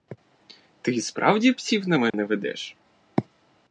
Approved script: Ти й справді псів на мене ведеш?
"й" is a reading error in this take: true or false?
false